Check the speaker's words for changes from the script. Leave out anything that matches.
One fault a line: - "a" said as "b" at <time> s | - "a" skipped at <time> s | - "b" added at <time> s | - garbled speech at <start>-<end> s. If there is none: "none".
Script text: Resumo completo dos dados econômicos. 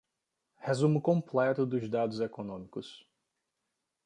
none